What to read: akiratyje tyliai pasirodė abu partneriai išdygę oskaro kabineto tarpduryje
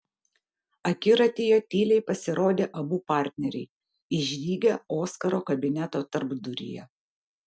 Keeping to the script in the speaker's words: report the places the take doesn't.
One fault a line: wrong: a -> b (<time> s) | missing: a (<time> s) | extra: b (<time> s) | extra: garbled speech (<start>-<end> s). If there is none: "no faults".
no faults